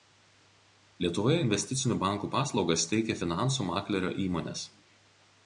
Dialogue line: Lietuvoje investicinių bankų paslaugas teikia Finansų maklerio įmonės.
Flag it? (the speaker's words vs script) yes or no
no